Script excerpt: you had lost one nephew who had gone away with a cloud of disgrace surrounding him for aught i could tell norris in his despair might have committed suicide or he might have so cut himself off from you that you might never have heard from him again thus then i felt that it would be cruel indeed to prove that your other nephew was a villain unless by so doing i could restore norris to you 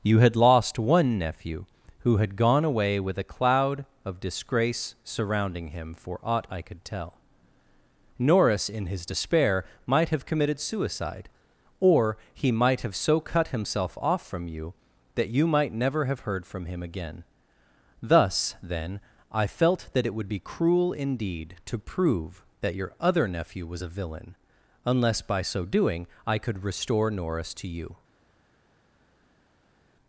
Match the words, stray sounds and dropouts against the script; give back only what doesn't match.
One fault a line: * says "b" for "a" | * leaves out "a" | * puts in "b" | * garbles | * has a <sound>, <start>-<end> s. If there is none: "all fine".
all fine